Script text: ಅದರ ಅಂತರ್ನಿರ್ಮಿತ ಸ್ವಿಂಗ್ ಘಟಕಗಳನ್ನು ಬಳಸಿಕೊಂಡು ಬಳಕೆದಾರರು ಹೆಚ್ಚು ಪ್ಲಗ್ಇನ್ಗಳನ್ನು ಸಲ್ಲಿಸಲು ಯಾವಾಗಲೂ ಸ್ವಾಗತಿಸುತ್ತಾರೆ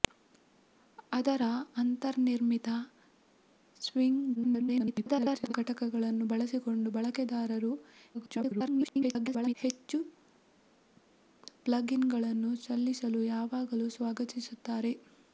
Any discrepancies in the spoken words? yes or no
yes